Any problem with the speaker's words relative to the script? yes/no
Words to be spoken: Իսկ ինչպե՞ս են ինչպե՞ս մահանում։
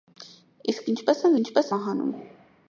no